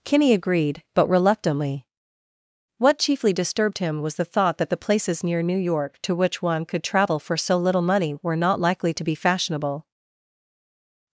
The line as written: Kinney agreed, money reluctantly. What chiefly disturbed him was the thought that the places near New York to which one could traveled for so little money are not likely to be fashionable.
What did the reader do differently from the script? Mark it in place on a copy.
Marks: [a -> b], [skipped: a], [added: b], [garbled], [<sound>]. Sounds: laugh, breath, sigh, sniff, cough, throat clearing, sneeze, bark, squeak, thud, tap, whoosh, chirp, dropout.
Kinney agreed, [money -> but] reluctantly. What chiefly disturbed him was the thought that the places near New York to which one could [traveled -> travel] for so little money [are -> were] not likely to be fashionable.